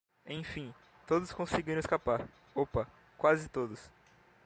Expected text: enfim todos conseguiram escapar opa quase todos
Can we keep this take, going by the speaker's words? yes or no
yes